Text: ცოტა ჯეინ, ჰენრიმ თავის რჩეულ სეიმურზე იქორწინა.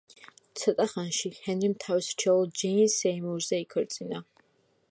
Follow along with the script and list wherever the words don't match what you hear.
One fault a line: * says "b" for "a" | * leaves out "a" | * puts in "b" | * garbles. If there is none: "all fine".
* says "ხანში" for "ჯეინ"
* puts in "ჯეინ"